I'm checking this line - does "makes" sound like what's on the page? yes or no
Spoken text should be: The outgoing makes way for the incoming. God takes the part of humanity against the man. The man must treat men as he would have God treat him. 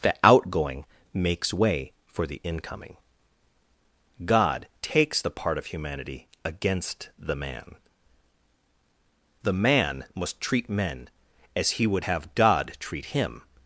yes